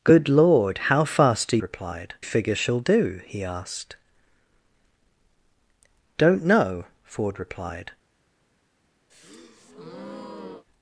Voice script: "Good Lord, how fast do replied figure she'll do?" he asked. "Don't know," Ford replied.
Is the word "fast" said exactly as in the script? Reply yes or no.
yes